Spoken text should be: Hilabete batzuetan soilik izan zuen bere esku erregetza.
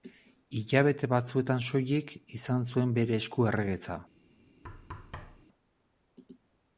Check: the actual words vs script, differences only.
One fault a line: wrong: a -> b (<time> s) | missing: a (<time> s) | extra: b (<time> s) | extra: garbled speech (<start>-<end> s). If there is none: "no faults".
no faults